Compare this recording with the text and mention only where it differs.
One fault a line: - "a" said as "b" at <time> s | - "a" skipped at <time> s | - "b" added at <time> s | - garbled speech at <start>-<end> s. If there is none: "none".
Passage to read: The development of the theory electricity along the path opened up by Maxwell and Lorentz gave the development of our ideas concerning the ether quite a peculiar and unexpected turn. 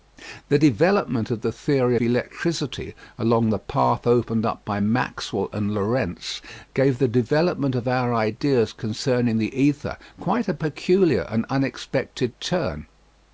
none